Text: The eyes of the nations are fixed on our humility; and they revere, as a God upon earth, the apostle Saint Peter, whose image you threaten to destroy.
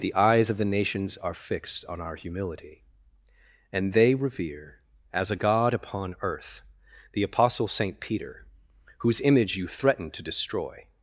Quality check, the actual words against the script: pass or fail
pass